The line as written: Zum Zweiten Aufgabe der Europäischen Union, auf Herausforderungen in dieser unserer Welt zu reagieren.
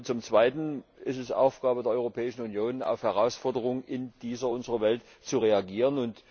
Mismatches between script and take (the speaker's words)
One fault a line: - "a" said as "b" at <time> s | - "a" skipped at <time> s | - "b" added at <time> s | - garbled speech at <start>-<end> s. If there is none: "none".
- "ist es" added at 1.0 s